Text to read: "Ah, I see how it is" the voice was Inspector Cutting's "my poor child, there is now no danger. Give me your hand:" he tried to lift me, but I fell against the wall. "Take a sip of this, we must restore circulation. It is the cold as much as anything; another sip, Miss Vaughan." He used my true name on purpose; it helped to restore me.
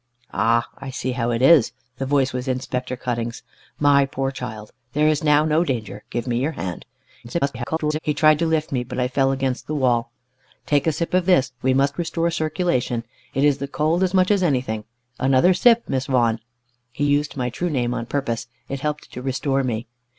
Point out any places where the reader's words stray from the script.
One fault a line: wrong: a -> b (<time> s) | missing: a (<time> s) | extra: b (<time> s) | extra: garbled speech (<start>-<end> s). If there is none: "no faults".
extra: garbled speech (7.2-8.0 s)